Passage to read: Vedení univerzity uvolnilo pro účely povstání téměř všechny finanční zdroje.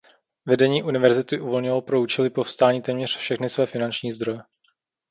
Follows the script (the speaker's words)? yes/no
no